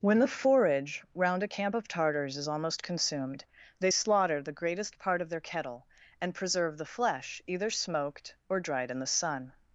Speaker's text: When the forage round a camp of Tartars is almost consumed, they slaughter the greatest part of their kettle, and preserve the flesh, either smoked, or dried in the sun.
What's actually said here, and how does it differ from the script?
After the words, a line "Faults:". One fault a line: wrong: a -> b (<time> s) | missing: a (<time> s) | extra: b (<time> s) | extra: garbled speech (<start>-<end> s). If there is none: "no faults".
When the forage round a camp of Tartars is almost consumed, they slaughter the greatest part of their kettle, and preserve the flesh, either smoked, or dried in the sun.
Faults:
no faults